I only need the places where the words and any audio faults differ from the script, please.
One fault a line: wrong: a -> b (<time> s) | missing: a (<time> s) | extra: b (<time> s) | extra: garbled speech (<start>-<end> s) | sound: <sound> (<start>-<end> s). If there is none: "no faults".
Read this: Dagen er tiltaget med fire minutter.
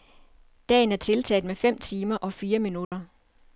extra: fem timer og (1.6 s)
sound: dropout (2.8-2.9 s)